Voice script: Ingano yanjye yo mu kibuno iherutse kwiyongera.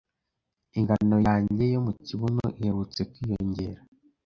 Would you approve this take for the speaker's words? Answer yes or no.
yes